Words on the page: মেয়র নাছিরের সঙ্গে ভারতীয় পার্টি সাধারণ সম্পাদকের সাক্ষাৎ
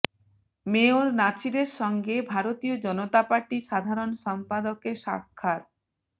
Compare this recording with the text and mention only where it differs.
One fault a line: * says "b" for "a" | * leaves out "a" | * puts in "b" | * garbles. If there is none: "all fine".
* puts in "জনতা"